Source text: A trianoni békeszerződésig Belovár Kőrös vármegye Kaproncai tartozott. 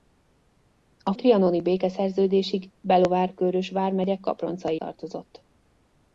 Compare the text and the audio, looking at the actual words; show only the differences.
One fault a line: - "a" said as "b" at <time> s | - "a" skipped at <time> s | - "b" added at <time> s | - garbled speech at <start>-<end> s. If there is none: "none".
none